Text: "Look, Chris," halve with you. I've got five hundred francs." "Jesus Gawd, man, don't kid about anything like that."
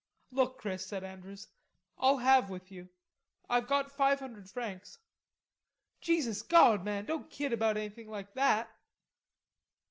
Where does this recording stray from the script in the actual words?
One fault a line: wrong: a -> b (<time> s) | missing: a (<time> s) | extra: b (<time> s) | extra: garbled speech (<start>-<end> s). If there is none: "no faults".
extra: said Andrews I'll (0.9 s)